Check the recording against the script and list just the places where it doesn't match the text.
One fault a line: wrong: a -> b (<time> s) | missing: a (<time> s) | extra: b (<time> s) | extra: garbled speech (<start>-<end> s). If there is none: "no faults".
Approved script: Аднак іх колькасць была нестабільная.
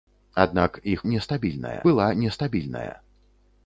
wrong: колькасць -> нестабільная (1.1 s)